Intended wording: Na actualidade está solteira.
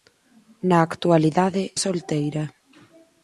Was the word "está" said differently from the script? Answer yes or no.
yes